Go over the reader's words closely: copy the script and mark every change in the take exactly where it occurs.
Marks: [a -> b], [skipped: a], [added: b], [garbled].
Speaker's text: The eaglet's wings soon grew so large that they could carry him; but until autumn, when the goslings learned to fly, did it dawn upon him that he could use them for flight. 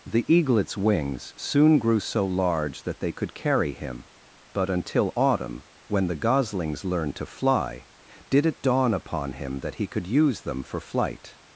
The eaglet's wings soon grew so large that they could carry him; but until autumn, when the goslings learned to fly, did it dawn upon him that he could use them for flight.